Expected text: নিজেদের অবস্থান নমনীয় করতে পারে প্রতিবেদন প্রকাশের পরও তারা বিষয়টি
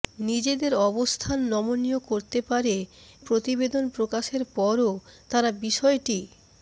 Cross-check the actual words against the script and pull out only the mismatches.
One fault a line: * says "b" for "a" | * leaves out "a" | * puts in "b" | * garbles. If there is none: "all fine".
all fine